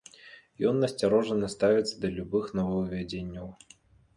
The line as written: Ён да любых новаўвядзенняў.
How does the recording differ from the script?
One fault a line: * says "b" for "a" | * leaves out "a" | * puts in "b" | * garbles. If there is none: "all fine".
* puts in "насцярожана ставіцца"